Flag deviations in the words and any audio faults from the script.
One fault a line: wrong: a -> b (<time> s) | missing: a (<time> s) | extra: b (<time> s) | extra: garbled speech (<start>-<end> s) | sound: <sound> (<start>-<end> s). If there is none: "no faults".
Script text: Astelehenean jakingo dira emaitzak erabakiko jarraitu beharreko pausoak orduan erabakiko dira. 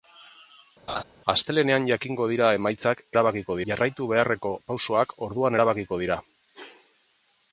sound: laugh (0.9-1.0 s)